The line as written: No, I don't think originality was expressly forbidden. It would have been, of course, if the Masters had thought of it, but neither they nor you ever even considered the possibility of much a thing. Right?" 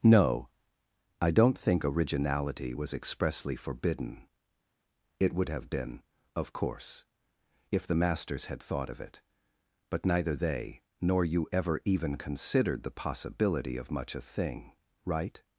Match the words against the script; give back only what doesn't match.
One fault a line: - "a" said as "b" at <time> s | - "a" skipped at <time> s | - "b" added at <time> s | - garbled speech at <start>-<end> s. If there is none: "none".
none